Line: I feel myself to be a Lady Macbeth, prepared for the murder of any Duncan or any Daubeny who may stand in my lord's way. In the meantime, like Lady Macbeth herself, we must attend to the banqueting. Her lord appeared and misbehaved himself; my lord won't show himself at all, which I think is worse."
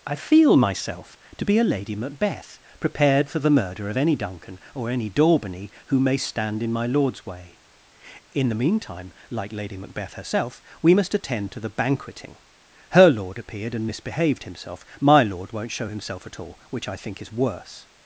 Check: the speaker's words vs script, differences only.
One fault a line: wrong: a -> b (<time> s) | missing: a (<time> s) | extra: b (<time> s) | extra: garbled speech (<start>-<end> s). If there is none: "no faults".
no faults